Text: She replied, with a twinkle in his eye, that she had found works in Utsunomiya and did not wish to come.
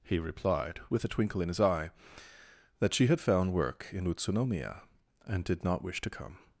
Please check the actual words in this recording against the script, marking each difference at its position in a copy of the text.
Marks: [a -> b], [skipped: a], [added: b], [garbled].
[She -> He] replied, with a twinkle in his eye, that she had found [works -> work] in Utsunomiya and did not wish to come.